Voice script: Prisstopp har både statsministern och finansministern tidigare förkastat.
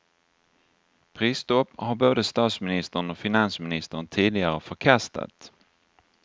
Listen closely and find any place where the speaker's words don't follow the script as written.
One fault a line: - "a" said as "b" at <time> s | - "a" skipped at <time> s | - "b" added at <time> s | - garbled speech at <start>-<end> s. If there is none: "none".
none